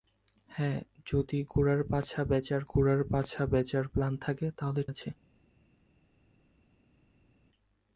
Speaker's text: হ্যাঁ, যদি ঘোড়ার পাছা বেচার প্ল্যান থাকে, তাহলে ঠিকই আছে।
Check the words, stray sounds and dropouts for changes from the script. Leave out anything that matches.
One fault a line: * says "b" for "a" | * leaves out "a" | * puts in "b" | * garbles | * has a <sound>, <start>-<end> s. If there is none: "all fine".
* puts in "ঘোড়ার পাছা বেচার"
* leaves out "ঠিকই"